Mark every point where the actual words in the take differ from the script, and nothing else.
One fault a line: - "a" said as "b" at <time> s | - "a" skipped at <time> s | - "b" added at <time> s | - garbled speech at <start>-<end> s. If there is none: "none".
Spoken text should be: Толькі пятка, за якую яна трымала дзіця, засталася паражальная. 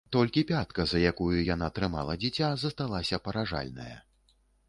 none